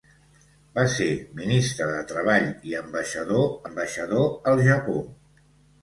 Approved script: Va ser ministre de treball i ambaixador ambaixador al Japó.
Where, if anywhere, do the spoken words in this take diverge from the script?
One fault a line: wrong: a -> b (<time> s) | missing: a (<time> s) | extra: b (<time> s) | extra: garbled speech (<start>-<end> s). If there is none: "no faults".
no faults